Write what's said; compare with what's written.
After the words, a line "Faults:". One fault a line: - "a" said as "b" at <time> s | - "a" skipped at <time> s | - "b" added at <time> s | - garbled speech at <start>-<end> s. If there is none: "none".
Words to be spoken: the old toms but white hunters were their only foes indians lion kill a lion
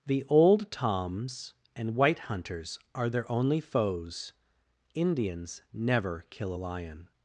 the old toms and white hunters are their only foes indians never kill a lion
Faults:
- "but" said as "and" at 1.8 s
- "were" said as "are" at 3.0 s
- "lion" said as "never" at 5.7 s